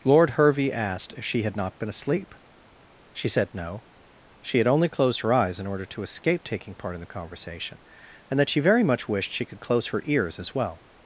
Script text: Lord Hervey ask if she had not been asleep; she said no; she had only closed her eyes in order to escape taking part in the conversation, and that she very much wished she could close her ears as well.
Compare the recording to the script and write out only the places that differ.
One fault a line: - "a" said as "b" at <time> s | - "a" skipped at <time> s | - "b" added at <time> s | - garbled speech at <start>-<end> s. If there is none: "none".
- "ask" said as "asked" at 0.7 s